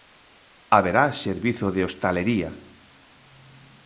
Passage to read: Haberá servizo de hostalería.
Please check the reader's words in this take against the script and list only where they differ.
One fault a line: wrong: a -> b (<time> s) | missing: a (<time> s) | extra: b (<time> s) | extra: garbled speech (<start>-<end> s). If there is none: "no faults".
no faults